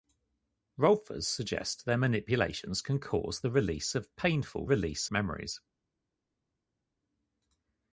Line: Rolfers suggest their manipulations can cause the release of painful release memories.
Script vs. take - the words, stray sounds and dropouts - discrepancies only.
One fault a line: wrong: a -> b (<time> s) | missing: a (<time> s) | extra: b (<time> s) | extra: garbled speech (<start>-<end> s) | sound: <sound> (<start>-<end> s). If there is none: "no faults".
no faults